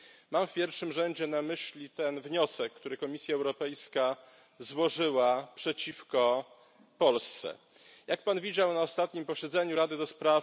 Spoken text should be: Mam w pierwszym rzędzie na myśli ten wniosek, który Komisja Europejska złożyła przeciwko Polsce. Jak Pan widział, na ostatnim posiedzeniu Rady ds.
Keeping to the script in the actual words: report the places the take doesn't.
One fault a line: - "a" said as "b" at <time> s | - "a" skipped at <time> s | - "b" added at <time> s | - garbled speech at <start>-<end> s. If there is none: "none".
none